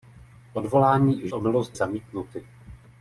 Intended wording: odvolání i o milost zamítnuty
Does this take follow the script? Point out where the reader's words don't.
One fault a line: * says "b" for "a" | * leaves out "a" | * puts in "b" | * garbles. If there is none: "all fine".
all fine